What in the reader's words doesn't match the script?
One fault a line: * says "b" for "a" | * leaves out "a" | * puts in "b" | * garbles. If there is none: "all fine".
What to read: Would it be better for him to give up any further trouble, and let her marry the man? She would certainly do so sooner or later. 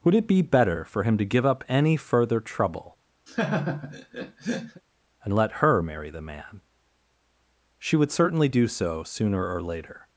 all fine